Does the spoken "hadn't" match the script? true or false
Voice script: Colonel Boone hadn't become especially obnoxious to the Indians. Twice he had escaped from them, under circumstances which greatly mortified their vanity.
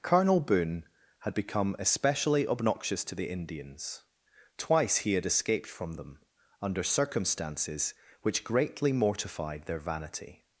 false